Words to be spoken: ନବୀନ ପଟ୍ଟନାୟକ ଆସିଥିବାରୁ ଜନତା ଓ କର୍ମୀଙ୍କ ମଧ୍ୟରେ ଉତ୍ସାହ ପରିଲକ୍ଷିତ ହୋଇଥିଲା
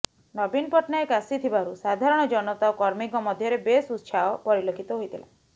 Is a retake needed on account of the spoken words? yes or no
yes